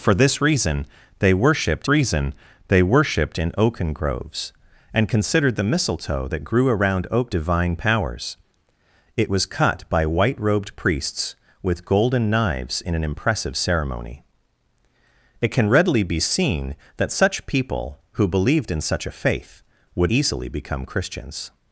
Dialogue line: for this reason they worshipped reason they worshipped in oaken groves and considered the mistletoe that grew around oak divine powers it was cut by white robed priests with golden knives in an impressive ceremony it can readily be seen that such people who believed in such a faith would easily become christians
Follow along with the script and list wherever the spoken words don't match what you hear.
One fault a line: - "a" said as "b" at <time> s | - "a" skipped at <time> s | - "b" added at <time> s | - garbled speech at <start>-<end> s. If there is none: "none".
none